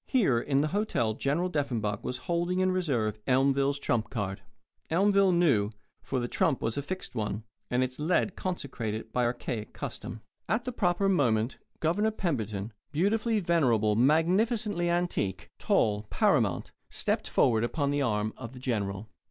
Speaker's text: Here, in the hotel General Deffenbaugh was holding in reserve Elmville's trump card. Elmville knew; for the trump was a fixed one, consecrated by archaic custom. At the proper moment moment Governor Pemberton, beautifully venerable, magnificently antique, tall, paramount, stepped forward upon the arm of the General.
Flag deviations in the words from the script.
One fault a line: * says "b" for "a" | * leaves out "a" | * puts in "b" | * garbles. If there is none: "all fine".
* puts in "and its lead"
* leaves out "moment"